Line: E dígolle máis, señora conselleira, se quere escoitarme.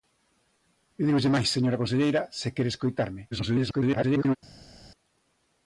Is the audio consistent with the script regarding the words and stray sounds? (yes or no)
no